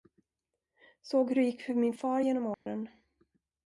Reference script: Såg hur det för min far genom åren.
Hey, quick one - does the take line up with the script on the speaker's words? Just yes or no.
no